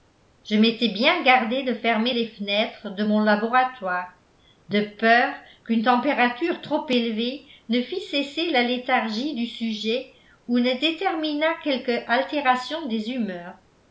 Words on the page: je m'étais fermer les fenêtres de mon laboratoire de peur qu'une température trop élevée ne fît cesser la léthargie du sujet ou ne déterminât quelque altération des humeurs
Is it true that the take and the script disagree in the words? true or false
true